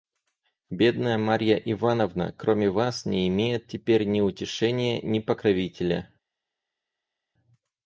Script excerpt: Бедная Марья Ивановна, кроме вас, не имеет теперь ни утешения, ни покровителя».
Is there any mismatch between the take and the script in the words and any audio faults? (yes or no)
no